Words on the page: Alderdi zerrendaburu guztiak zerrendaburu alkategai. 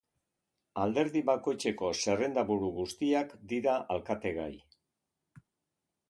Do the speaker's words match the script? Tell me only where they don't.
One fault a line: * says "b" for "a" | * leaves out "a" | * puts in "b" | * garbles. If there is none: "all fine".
* puts in "bakoitzeko"
* says "dira" for "zerrendaburu"